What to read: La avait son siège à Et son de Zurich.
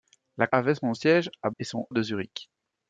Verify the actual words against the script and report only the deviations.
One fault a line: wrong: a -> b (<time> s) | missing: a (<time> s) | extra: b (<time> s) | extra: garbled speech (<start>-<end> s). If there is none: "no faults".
no faults